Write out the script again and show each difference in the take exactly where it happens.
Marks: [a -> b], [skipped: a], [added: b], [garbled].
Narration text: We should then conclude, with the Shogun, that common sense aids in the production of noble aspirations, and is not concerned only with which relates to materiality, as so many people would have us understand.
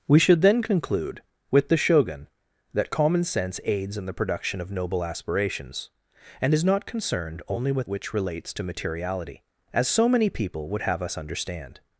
We should then conclude, with the Shogun, that common sense aids in the production of noble aspirations, and is not concerned only with which relates to materiality, as so many people would have us understand.